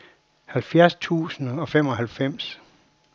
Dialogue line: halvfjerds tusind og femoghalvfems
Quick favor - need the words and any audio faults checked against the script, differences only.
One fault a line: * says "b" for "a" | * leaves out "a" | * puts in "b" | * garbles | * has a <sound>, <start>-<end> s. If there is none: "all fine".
all fine